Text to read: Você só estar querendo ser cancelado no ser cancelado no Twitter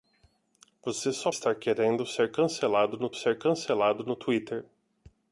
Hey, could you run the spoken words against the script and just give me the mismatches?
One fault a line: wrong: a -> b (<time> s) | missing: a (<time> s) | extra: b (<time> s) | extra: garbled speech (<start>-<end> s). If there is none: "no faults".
no faults